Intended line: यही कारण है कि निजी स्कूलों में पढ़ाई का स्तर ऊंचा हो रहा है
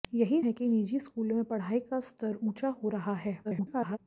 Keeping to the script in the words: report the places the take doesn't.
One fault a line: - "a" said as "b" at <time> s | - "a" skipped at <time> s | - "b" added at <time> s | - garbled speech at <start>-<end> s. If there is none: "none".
- "कारण" skipped at 0.4 s
- garbled speech at 3.4-4.0 s